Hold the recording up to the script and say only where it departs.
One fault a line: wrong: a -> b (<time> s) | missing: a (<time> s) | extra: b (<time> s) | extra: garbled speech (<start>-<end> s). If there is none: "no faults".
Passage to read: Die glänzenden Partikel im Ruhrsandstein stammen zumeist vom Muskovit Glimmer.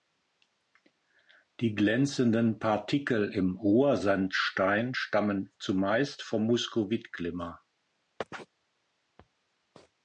no faults